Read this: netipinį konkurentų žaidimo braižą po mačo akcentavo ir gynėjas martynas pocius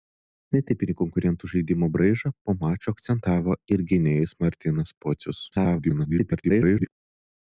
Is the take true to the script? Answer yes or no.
no